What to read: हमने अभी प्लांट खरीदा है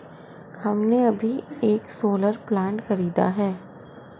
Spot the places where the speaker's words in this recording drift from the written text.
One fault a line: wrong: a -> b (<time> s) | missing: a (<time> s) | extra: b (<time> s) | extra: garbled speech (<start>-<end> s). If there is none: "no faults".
extra: एक सोलर (1.6 s)